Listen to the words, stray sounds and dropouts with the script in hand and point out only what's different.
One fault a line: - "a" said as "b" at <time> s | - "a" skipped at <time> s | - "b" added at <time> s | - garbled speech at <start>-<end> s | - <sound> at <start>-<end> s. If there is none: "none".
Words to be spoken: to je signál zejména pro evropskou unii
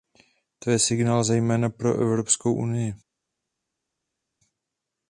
none